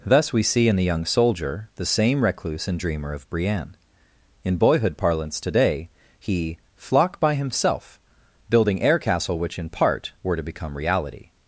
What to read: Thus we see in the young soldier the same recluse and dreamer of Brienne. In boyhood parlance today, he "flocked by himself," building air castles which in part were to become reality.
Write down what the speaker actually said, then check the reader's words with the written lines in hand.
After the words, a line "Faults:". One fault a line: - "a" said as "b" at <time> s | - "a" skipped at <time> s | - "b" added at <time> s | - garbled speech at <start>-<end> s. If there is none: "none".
Thus we see in the young soldier the same recluse and dreamer of Brienne. In boyhood parlance today, he "flock by himself," building air castle which in part were to become reality.
Faults:
- "flocked" said as "flock" at 6.8 s
- "castles" said as "castle" at 9.0 s